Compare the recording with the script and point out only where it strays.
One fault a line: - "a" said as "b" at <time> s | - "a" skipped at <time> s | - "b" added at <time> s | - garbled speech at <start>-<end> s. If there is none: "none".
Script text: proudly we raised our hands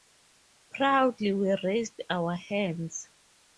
none